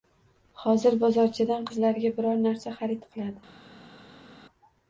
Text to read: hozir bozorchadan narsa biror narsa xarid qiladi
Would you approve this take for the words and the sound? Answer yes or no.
no